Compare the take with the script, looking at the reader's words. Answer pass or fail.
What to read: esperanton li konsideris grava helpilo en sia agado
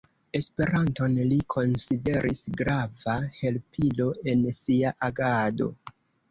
pass